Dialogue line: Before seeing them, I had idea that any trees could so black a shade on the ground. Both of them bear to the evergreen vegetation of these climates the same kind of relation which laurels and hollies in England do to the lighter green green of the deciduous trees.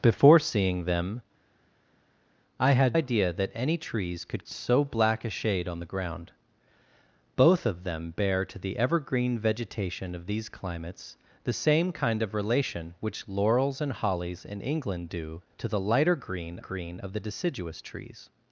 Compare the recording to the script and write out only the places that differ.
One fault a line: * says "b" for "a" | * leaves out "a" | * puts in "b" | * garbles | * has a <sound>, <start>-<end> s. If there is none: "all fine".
all fine